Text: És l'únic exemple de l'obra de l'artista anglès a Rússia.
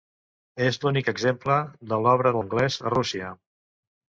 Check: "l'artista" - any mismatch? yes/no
yes